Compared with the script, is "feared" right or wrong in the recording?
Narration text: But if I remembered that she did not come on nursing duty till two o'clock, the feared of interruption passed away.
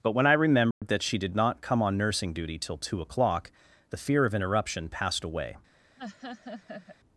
wrong